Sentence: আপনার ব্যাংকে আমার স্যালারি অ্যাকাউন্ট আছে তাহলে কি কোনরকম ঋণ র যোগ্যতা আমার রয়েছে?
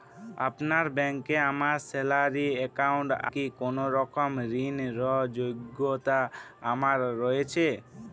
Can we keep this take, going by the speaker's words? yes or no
no